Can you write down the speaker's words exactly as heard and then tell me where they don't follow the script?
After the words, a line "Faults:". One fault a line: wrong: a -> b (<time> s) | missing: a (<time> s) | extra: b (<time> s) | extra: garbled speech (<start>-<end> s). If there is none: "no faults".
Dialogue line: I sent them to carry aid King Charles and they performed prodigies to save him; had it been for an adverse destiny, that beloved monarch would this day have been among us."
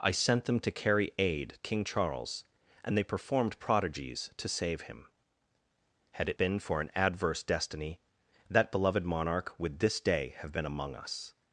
I sent them to carry aid King Charles and they performed prodigies to save him; had it been for an adverse destiny, that beloved monarch would this day have been among us."
Faults:
no faults